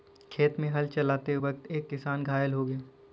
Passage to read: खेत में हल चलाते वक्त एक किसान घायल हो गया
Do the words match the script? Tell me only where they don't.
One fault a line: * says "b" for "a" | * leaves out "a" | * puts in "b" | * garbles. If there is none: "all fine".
all fine